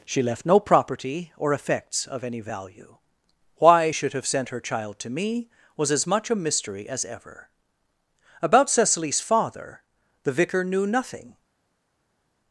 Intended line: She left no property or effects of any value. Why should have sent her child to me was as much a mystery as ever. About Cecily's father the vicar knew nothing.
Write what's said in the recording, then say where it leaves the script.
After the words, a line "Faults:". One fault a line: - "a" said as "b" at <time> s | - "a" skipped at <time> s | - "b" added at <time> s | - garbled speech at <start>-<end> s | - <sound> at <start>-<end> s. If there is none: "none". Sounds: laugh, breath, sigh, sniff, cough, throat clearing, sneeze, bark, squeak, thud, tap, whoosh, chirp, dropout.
She left no property or effects of any value. Why should have sent her child to me was as much a mystery as ever. About Cecily's father the vicar knew nothing.
Faults:
none